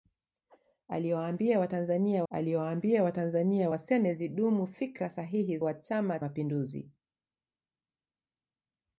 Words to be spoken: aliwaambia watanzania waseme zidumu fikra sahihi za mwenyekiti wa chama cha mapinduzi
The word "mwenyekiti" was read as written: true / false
false